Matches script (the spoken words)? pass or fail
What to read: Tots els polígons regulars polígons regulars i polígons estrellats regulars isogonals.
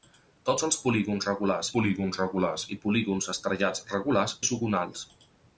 pass